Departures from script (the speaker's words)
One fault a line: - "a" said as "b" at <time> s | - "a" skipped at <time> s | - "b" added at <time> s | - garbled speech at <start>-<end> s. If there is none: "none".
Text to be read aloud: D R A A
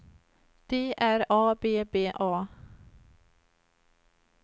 - "B B" added at 1.6 s